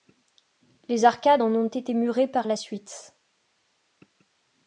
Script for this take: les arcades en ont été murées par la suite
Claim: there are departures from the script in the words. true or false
false